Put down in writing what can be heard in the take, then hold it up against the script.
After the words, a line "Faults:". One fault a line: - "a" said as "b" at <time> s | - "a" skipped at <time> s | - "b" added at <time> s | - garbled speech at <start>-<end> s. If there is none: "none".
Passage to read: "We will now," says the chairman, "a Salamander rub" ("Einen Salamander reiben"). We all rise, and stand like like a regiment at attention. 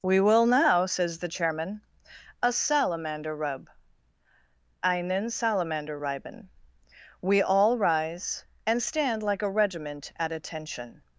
"We will now," says the chairman, "a Salamander rub" ("Einen Salamander reiben"). We all rise, and stand like a regiment at attention.
Faults:
- "like" skipped at 9.4 s